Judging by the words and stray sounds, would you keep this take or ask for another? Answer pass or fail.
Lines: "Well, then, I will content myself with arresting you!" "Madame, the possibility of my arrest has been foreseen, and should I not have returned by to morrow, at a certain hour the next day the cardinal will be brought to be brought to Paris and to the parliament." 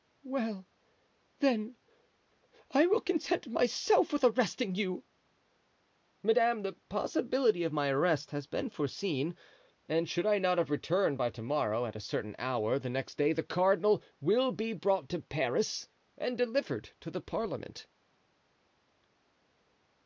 fail